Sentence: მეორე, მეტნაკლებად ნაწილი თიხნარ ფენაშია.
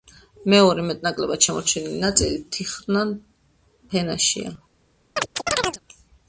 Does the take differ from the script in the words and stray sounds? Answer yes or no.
yes